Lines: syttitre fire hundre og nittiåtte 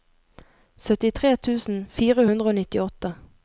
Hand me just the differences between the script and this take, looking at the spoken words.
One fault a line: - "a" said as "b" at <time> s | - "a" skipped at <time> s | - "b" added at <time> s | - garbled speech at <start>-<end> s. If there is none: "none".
- "tusen" added at 1.5 s